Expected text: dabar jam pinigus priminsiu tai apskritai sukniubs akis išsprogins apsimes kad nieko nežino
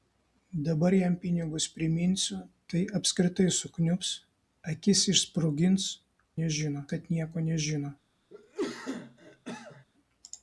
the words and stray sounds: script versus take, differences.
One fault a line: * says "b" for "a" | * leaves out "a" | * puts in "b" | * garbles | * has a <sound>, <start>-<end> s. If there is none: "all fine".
* says "nežino" for "apsimes"
* has a cough, 8.3-9.8 s